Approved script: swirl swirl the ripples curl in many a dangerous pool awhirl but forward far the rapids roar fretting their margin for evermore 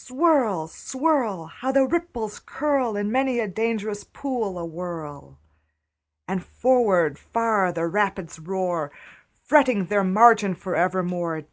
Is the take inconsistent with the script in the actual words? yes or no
yes